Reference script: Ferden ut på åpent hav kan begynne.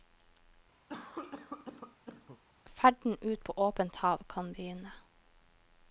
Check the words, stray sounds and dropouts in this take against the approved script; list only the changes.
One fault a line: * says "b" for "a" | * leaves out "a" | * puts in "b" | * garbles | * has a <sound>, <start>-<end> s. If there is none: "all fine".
* has a cough, 0.9-2.4 s